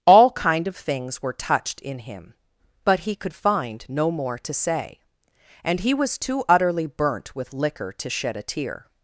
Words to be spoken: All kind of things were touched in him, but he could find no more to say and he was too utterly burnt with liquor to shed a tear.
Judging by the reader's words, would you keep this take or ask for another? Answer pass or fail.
pass